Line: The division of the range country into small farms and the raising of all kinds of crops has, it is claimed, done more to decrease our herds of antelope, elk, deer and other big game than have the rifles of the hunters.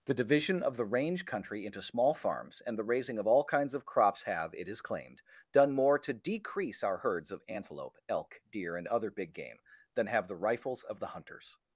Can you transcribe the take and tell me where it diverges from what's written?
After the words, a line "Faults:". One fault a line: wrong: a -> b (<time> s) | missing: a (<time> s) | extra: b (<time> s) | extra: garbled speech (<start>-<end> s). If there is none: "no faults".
The division of the range country into small farms and the raising of all kinds of crops have, it is claimed, done more to decrease our herds of antelope, elk, deer and other big game than have the rifles of the hunters.
Faults:
wrong: has -> have (4.2 s)